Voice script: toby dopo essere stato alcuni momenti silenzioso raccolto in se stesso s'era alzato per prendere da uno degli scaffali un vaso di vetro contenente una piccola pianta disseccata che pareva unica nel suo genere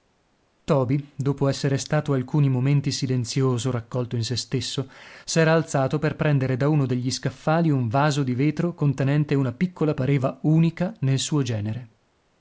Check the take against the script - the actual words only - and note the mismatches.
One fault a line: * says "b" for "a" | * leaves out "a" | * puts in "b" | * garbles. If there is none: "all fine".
* leaves out "pianta disseccata che"